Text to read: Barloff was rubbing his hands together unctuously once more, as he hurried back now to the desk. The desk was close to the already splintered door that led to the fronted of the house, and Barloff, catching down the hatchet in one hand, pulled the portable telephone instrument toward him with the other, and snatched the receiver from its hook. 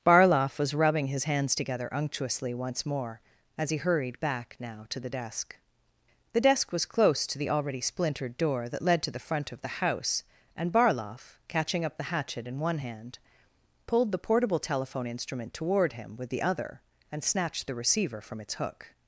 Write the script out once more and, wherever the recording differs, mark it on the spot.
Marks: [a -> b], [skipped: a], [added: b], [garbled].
Barloff was rubbing his hands together unctuously once more, as he hurried back now to the desk. The desk was close to the already splintered door that led to the [fronted -> front] of the house, and Barloff, catching [down -> up] the hatchet in one hand, pulled the portable telephone instrument toward him with the other, and snatched the receiver from its hook.